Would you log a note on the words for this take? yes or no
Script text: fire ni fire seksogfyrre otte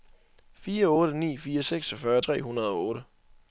yes